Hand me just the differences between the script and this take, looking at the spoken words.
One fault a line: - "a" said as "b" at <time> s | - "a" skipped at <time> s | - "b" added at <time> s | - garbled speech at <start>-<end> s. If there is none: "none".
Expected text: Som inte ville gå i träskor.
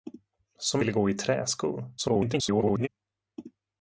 - "inte" skipped at 0.8 s
- garbled speech at 2.0-2.9 s